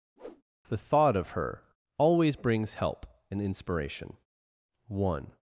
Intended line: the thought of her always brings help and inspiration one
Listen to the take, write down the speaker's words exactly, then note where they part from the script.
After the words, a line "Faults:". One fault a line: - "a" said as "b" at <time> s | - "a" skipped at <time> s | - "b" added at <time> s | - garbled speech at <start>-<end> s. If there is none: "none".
the thought of her always brings help and inspiration one
Faults:
none